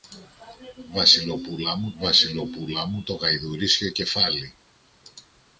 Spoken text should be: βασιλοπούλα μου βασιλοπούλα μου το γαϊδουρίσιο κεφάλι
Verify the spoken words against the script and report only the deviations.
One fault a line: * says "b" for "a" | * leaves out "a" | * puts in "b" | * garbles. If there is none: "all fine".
all fine